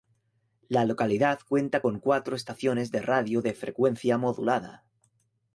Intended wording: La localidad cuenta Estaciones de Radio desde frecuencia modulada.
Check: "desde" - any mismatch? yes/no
yes